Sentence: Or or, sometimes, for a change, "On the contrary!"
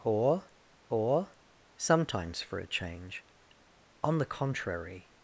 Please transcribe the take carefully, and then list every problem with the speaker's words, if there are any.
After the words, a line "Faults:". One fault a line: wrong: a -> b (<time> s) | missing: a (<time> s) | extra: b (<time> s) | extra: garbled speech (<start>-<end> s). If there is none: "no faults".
Or or, sometimes, for a change, "On the contrary!"
Faults:
no faults